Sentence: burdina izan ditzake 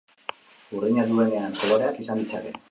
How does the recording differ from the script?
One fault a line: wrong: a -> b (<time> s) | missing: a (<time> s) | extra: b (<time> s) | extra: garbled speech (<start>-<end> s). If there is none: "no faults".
extra: duenean koloreak (1.1 s)